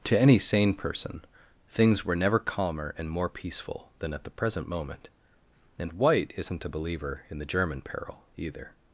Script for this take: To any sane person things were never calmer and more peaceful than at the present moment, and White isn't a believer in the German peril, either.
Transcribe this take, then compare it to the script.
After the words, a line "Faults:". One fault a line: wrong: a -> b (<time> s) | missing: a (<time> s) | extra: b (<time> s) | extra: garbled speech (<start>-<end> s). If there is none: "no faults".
To any sane person things were never calmer and more peaceful than at the present moment, and White isn't a believer in the German peril, either.
Faults:
no faults